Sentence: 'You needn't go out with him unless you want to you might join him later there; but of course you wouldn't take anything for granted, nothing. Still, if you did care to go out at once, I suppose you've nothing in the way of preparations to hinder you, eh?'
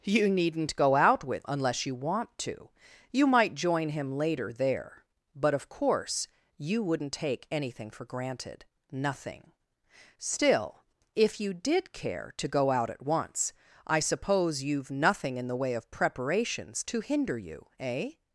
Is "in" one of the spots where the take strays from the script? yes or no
no